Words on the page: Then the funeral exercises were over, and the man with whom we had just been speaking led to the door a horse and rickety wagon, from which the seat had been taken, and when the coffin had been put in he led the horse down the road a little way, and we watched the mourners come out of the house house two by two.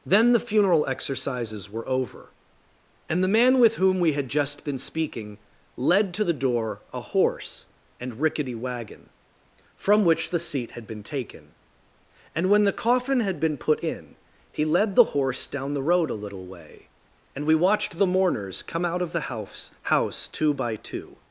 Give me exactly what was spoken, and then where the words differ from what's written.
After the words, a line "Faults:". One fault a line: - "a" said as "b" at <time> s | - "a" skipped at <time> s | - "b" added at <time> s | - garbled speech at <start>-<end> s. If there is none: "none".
Then the funeral exercises were over, and the man with whom we had just been speaking led to the door a horse and rickety wagon, from which the seat had been taken, and when the coffin had been put in he led the horse down the road a little way, and we watched the mourners come out of the house house two by two.
Faults:
none